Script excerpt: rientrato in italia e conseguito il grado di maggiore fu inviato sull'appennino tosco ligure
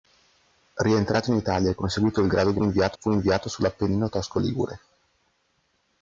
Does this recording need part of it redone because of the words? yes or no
yes